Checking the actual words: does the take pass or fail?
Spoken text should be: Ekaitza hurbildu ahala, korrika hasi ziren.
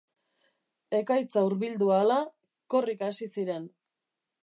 pass